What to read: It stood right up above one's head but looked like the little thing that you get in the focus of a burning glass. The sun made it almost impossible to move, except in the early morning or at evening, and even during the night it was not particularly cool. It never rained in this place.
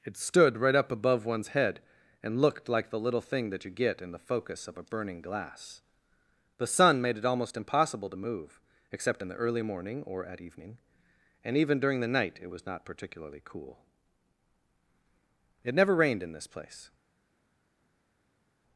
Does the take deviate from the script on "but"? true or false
true